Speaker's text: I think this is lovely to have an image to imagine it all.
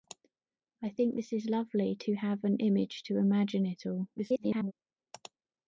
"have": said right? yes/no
yes